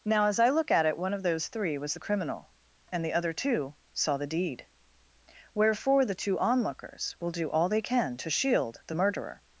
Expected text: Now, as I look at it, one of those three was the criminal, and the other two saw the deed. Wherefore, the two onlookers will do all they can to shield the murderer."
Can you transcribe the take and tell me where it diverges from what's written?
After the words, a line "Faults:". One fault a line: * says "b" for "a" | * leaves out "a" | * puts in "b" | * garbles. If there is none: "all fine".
Now, as I look at it, one of those three was the criminal, and the other two saw the deed. Wherefore, the two onlookers will do all they can to shield the murderer."
Faults:
all fine